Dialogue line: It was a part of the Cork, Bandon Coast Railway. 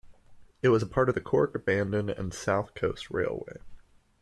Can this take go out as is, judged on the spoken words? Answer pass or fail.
fail